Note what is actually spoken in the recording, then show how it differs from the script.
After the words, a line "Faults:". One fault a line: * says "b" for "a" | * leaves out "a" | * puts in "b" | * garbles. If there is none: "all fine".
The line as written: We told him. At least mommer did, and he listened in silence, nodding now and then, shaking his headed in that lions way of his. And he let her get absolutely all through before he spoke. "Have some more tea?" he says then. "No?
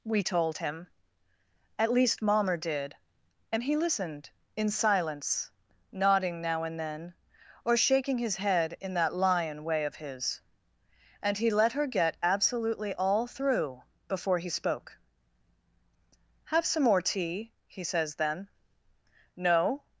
We told him. At least mommer did, and he listened in silence, nodding now and then, or shaking his head in that lion way of his. And he let her get absolutely all through before he spoke. "Have some more tea?" he says then. "No?
Faults:
* puts in "or"
* says "head" for "headed"
* says "lion" for "lions"